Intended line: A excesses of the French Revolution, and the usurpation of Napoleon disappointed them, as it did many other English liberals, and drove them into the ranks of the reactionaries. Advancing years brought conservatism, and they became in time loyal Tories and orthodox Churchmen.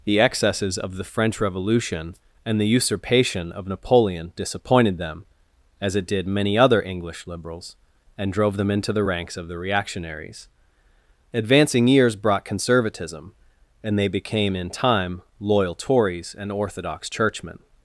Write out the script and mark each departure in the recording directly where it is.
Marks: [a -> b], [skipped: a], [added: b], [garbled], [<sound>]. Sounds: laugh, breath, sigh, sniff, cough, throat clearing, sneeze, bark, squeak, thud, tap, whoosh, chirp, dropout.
[A -> The] excesses of the French Revolution, and the usurpation of Napoleon disappointed them, as it did many other English liberals, and drove them into the ranks of the reactionaries. Advancing years brought conservatism, and they became in time loyal Tories and orthodox Churchmen.